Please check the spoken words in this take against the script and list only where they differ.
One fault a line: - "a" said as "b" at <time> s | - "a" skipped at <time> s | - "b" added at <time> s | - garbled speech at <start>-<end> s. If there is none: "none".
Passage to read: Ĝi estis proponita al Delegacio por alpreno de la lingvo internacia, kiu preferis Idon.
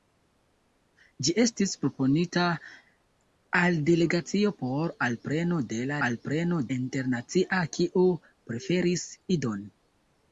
- "lingvo" said as "alpreno" at 6.1 s